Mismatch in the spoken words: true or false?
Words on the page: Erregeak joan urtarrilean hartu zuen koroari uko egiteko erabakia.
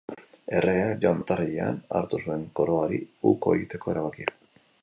false